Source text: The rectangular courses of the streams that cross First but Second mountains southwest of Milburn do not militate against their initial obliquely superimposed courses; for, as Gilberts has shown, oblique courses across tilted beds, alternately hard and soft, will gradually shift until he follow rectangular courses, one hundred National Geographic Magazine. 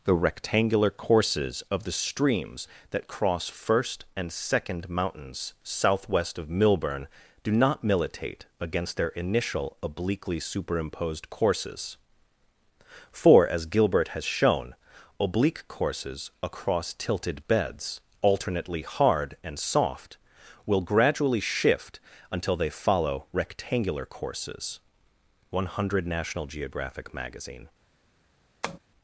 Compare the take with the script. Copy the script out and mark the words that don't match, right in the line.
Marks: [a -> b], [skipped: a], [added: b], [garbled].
The rectangular courses of the streams that cross First [but -> and] Second mountains southwest of Milburn do not militate against their initial obliquely superimposed courses; for, as [Gilberts -> Gilbert] has shown, oblique courses across tilted beds, alternately hard and soft, will gradually shift until [he -> they] follow rectangular courses, one hundred National Geographic Magazine.